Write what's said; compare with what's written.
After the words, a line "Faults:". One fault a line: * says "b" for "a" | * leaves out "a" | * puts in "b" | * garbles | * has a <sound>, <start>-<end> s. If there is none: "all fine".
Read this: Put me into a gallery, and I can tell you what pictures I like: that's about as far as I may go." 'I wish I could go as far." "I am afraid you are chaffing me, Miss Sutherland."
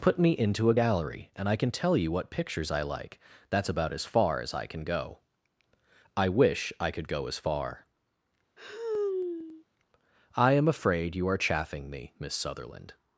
Put me into a gallery, and I can tell you what pictures I like: that's about as far as I can go." 'I wish I could go as far." "I am afraid you are chaffing me, Miss Sutherland."
Faults:
* says "can" for "may"
* has a sigh, 8.6-9.6 s